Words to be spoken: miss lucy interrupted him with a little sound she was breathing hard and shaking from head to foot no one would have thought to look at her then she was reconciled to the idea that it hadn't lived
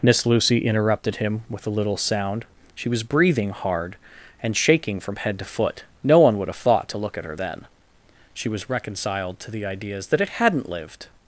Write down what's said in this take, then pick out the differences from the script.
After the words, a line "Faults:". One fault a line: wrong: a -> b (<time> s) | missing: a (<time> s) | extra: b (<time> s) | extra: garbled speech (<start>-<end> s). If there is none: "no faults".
miss lucy interrupted him with a little sound she was breathing hard and shaking from head to foot no one would have thought to look at her then she was reconciled to the ideas that it hadn't lived
Faults:
wrong: idea -> ideas (9.7 s)